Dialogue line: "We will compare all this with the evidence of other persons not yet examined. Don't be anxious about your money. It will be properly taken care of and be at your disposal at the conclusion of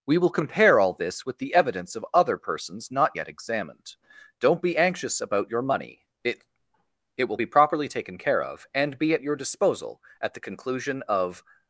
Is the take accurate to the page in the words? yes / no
no